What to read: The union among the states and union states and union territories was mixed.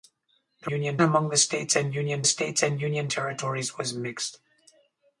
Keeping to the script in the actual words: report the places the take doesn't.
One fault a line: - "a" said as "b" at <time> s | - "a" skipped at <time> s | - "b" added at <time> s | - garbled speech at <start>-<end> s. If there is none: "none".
none